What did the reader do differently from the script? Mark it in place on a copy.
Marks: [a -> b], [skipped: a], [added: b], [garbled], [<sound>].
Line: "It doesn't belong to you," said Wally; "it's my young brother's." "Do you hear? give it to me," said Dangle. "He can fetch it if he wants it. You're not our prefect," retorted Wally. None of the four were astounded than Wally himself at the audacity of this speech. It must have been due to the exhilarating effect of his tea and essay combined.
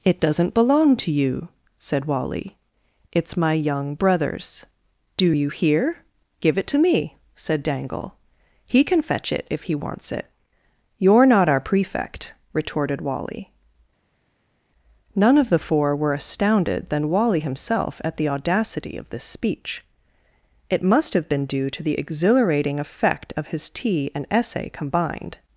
"It doesn't belong to you," said Wally; "it's my young brother's." "Do you hear? give it to me," said Dangle. "He can fetch it if he wants it. You're not our prefect," retorted Wally. None of the four were astounded than Wally himself at the audacity of this speech. It must have been due to the exhilarating effect of his tea and essay combined.